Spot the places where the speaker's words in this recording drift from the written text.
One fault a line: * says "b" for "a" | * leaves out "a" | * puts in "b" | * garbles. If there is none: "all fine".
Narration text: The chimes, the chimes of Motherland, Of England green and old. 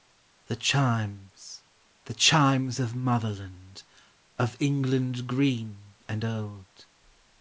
all fine